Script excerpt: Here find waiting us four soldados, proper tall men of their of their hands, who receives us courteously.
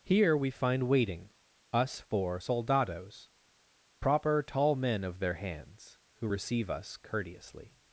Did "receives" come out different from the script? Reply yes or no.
yes